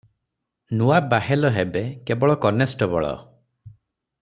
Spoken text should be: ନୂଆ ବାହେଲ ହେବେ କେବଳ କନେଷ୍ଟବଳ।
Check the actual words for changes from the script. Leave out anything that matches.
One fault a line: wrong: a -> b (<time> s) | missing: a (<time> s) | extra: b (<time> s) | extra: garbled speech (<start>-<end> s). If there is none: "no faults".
no faults